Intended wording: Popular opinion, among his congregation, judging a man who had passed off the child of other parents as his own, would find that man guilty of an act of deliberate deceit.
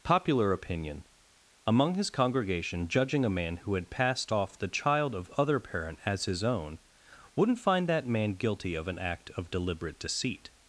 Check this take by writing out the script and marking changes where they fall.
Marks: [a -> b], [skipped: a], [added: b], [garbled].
Popular opinion, among his congregation, judging a man who had passed off the child of other [parents -> parent] as his own, [would -> wouldn't] find that man guilty of an act of deliberate deceit.